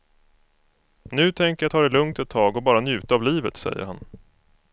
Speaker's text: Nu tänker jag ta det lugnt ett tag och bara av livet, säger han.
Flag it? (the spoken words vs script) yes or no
yes